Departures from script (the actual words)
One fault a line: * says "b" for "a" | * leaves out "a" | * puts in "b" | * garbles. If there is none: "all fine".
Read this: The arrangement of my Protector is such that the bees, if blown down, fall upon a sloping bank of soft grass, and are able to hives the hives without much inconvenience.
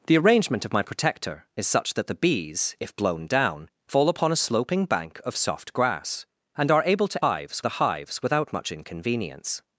all fine